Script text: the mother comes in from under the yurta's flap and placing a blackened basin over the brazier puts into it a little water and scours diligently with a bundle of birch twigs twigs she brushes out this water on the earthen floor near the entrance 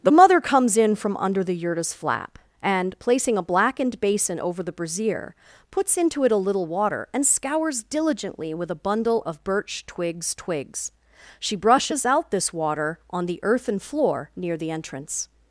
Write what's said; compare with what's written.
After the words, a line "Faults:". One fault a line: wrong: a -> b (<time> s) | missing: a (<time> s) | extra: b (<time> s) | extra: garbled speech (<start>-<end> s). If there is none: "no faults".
the mother comes in from under the yurta's flap and placing a blackened basin over the brazier puts into it a little water and scours diligently with a bundle of birch twigs twigs she brushes out this water on the earthen floor near the entrance
Faults:
no faults